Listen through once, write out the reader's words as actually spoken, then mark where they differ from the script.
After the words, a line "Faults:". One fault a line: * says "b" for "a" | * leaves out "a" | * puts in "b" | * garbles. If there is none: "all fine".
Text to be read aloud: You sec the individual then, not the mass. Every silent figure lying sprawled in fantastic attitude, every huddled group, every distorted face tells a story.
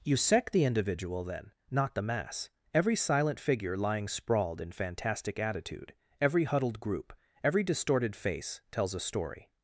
You sec the individual then, not the mass. Every silent figure lying sprawled in fantastic attitude, every huddled group, every distorted face tells a story.
Faults:
all fine